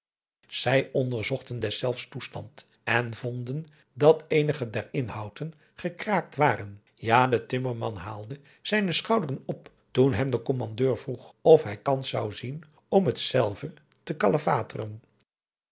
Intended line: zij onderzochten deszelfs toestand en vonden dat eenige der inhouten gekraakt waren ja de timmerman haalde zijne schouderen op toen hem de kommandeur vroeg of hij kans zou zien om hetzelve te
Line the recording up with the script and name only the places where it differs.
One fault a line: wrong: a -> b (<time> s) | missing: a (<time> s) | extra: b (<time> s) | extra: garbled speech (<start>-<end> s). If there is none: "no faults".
no faults